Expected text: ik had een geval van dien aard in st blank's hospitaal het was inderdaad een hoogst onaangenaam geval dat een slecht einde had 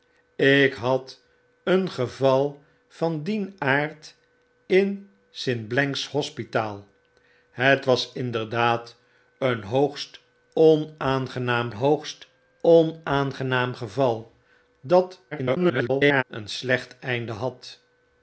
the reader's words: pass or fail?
fail